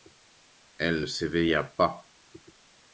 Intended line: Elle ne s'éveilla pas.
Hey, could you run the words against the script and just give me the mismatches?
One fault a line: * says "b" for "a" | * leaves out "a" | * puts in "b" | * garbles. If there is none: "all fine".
all fine